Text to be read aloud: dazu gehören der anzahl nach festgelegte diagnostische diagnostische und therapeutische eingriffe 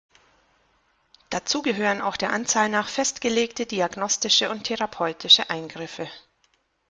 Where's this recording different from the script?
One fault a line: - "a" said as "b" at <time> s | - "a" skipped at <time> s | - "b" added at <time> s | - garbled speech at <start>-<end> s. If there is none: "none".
- "auch" added at 2.0 s
- "diagnostische" skipped at 4.5 s